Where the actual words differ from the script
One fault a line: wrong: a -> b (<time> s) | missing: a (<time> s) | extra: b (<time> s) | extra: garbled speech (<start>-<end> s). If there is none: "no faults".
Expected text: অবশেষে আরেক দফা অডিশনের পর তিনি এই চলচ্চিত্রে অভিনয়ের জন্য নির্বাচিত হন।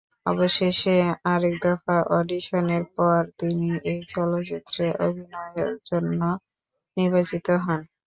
no faults